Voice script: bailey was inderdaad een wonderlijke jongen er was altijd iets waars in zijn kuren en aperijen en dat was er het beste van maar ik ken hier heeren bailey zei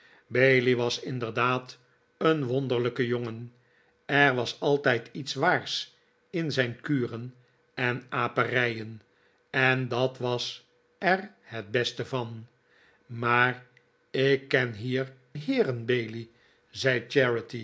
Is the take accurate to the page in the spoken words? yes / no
yes